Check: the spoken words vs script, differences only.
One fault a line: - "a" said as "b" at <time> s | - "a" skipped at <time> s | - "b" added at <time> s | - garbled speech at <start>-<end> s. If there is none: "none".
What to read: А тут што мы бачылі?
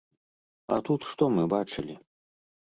none